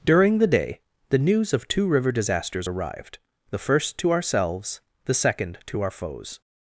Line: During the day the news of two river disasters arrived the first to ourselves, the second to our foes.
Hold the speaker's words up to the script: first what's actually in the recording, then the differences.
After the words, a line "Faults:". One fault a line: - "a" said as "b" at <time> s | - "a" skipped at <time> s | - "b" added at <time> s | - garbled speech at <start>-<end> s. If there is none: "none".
During the day the news of two river disasters arrived the first to ourselves, the second to our foes.
Faults:
none